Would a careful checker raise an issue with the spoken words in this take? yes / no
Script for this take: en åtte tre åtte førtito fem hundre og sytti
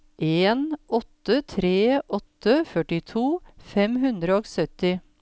no